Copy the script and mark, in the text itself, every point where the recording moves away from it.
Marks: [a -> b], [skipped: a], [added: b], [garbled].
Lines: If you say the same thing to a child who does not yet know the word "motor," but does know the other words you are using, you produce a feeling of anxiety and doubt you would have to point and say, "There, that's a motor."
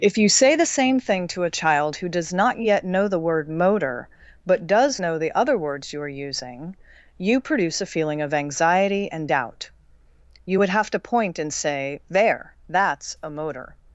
If you say the same thing to a child who does not yet know the word "motor," but does know the other words you are using, you produce a feeling of anxiety and doubt you would have to point and say, "There, that's a motor."